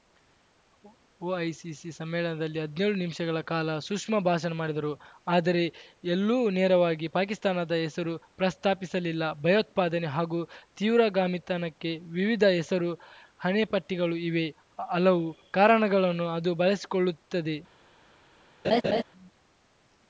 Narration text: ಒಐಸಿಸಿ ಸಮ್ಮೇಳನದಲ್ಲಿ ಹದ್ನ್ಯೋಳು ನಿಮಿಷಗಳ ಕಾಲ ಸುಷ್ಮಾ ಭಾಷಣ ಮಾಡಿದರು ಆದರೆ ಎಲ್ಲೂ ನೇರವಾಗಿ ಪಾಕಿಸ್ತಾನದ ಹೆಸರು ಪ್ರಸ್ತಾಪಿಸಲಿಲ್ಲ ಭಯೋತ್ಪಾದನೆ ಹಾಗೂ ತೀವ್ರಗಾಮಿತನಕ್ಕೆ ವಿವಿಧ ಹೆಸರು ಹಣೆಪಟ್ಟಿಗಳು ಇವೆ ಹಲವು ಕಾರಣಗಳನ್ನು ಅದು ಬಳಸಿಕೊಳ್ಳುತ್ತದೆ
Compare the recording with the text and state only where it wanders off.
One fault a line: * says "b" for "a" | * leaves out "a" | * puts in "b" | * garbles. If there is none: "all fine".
all fine